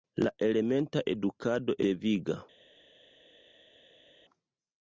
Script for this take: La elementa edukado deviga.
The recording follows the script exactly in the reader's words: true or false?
true